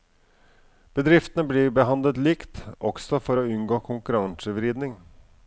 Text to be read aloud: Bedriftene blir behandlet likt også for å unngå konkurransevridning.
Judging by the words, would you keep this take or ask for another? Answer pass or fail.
pass